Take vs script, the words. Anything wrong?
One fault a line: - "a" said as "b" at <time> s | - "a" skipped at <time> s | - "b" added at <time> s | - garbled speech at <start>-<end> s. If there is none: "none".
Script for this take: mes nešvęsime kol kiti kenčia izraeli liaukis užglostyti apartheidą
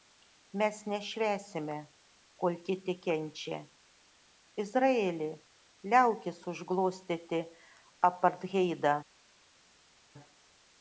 none